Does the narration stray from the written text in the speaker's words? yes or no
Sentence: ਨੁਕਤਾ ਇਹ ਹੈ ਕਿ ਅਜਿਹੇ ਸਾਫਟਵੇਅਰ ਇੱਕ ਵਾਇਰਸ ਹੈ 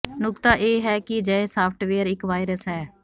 no